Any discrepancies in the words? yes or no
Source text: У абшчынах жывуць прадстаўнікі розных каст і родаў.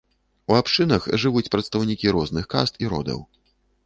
no